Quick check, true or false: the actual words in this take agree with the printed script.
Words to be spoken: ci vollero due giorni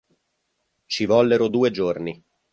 true